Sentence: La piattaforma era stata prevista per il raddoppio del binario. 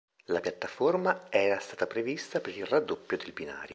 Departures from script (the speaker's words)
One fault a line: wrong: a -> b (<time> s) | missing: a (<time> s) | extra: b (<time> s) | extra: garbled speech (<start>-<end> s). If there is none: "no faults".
no faults